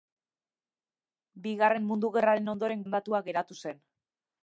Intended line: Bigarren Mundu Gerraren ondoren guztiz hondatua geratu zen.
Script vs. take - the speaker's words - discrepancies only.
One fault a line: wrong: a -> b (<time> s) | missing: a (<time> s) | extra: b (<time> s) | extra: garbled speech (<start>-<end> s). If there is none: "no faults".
missing: guztiz (2.9 s)